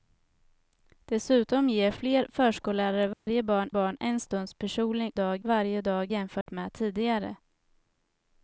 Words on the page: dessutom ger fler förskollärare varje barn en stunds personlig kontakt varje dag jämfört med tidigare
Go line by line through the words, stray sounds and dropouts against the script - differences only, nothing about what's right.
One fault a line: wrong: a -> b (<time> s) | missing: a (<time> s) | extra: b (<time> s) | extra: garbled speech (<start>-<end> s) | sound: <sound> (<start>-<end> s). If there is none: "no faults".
sound: dropout (3.1-3.3 s)
extra: barn (3.7 s)
wrong: kontakt -> dag (5.1 s)
sound: dropout (6.4-6.5 s)